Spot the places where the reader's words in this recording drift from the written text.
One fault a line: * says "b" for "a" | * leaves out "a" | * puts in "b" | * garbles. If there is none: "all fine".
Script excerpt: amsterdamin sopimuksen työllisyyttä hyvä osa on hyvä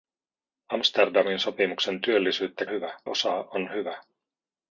all fine